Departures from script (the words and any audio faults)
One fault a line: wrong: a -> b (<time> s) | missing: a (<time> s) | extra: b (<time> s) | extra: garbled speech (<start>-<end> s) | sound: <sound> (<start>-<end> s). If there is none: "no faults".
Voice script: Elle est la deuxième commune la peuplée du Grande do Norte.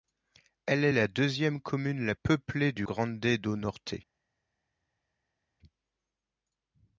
no faults